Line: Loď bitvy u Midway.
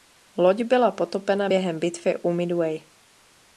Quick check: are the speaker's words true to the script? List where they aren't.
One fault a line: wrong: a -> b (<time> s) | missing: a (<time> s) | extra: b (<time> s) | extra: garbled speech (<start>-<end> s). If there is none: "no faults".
extra: byla potopena během (0.6 s)